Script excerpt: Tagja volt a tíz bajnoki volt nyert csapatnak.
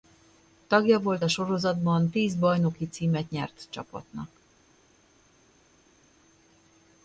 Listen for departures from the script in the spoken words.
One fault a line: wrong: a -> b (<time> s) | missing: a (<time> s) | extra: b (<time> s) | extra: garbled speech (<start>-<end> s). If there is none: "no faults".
extra: sorozatban (1.3 s)
wrong: volt -> címet (2.9 s)